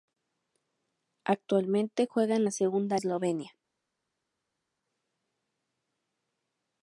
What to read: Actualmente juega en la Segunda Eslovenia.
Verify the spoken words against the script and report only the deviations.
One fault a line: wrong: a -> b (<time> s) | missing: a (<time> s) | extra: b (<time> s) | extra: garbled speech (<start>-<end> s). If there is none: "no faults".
no faults